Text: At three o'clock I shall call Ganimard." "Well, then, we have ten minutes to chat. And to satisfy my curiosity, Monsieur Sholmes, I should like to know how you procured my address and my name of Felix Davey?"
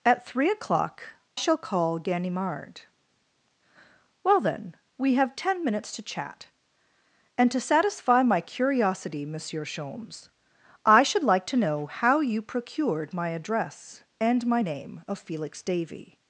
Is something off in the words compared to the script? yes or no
yes